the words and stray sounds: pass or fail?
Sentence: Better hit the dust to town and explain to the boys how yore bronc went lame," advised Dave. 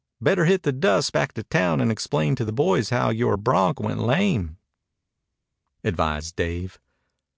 fail